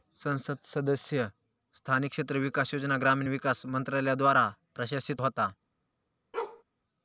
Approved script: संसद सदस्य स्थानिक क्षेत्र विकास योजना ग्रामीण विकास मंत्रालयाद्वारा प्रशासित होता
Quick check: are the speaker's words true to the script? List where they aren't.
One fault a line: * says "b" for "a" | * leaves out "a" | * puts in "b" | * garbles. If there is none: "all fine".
all fine